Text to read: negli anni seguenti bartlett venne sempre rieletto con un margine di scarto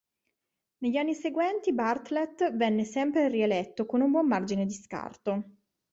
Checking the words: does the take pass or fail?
fail